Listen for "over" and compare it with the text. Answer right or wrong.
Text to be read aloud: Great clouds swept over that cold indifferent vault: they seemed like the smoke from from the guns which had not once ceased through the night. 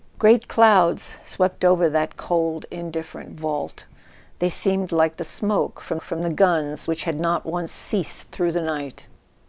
right